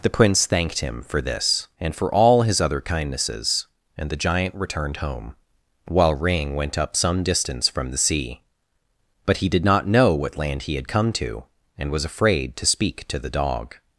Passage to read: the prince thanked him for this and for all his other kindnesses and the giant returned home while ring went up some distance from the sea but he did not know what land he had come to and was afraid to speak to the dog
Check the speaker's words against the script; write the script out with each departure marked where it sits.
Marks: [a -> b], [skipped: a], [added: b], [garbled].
the prince thanked him for this and for all his other kindnesses and the giant returned home while ring went up some distance from the sea but he did not know what land he had come to and was afraid to speak to the dog